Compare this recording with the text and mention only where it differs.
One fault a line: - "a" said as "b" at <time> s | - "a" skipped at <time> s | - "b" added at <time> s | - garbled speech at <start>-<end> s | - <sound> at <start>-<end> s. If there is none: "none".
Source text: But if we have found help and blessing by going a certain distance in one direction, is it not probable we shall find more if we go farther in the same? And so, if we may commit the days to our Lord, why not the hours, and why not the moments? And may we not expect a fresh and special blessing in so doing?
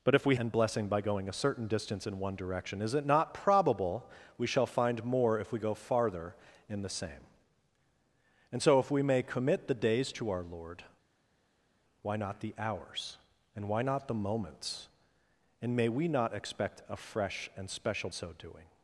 - "have found help" skipped at 0.3 s
- "blessing in" skipped at 18.1 s